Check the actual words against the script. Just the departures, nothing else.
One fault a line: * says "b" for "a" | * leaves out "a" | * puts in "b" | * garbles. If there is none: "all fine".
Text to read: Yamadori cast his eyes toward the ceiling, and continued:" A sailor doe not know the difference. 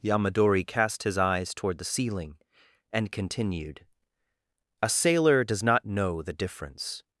* says "does" for "doe"